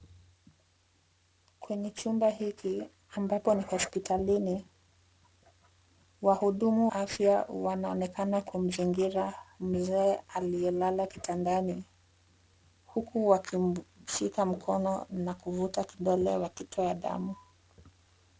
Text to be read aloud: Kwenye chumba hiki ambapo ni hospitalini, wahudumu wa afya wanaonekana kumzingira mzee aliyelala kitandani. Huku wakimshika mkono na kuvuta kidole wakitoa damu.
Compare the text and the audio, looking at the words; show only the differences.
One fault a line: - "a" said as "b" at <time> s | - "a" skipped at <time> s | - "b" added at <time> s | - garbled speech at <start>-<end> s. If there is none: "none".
- "wa" skipped at 6.9 s